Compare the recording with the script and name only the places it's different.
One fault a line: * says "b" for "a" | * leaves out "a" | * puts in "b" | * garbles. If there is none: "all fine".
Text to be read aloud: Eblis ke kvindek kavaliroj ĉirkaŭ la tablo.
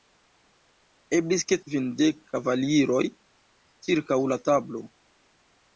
all fine